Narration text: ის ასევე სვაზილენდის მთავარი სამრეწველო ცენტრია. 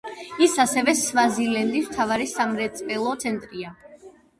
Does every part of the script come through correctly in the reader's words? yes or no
yes